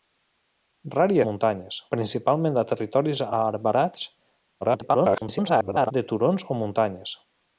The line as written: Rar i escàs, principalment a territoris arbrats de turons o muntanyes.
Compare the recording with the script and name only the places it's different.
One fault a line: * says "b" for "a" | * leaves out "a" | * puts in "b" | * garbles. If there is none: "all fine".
* says "muntanyes" for "escàs"
* garbles